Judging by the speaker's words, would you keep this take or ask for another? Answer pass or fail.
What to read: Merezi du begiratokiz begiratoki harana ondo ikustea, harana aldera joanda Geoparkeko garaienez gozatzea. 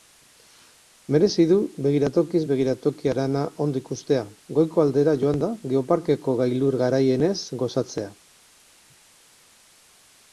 fail